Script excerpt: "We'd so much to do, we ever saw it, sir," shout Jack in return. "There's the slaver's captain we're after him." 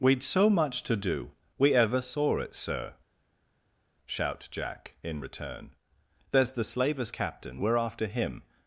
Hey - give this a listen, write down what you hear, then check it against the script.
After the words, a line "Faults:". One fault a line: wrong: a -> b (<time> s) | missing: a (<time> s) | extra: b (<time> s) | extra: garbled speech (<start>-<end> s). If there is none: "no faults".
"We'd so much to do, we ever saw it, sir," shout Jack in return. "There's the slaver's captain we're after him."
Faults:
no faults